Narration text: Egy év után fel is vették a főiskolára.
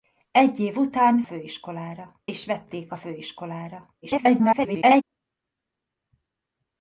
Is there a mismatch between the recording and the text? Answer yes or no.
yes